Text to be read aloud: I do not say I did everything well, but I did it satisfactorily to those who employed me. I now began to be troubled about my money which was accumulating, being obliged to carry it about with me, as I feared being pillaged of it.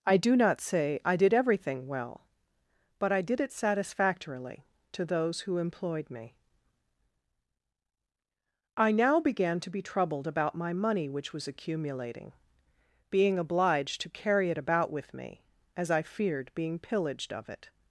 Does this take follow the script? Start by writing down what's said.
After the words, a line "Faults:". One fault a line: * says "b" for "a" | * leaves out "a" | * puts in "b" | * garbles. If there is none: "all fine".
I do not say I did everything well, but I did it satisfactorily to those who employed me. I now began to be troubled about my money which was accumulating, being obliged to carry it about with me, as I feared being pillaged of it.
Faults:
all fine